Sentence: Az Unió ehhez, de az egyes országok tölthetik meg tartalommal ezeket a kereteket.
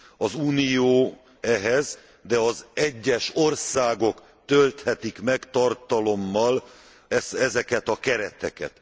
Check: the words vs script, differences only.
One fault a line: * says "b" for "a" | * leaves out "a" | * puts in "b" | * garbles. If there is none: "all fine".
all fine